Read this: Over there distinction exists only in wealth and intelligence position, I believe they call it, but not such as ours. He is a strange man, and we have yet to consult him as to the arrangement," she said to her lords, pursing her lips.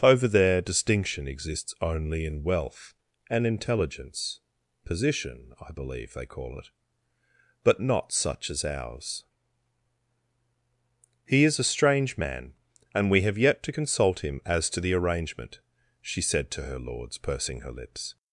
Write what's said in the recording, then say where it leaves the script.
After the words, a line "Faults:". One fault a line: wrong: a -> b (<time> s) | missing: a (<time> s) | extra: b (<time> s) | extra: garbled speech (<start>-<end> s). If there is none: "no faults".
Over there distinction exists only in wealth and intelligence position, I believe they call it, but not such as ours. He is a strange man, and we have yet to consult him as to the arrangement," she said to her lords, pursing her lips.
Faults:
no faults